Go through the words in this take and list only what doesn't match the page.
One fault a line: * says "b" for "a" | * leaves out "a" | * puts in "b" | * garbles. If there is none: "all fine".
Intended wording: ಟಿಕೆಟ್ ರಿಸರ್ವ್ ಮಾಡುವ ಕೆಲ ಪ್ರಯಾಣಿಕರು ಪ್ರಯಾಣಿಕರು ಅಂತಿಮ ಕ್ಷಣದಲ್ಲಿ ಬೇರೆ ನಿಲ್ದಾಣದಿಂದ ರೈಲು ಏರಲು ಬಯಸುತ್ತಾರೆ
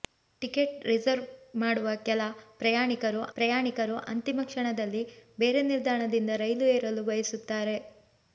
all fine